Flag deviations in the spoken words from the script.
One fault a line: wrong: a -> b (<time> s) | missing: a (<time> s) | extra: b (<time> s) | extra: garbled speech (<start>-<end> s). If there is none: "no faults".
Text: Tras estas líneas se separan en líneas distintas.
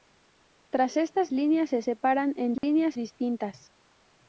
no faults